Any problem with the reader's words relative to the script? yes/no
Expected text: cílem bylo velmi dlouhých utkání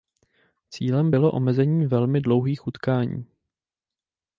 yes